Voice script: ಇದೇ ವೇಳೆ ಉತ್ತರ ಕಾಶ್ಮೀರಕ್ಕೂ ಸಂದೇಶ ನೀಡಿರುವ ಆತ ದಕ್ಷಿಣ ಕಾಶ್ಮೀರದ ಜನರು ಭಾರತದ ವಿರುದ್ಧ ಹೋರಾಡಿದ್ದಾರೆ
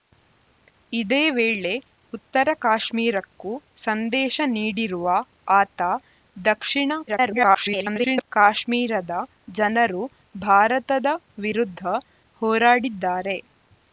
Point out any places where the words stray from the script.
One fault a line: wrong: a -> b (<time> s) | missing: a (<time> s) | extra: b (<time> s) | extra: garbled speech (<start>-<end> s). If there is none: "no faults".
extra: garbled speech (7.1-8.3 s)